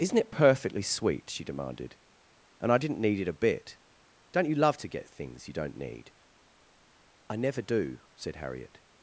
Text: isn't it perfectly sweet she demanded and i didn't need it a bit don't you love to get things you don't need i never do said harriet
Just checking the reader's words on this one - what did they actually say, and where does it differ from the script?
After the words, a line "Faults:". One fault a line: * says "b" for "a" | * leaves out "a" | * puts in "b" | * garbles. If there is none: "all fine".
isn't it perfectly sweet she demanded and i didn't need it a bit don't you love to get things you don't need i never do said harriet
Faults:
all fine